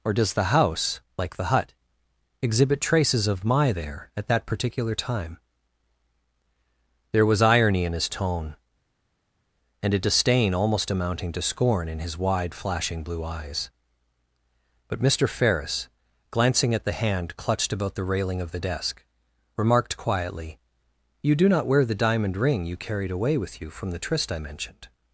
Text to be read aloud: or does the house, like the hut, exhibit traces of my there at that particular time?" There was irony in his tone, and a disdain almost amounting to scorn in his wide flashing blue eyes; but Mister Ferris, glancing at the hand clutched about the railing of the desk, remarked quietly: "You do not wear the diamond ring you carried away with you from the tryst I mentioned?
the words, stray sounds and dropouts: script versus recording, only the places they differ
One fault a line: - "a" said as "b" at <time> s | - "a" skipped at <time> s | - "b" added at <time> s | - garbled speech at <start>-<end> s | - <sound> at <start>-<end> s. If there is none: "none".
none